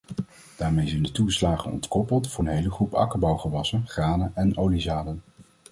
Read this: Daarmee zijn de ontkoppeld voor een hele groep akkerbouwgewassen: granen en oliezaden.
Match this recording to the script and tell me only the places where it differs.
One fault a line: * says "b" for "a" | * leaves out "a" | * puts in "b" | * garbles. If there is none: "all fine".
* puts in "toeslagen"